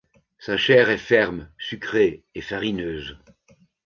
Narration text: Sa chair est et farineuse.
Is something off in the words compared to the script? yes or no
yes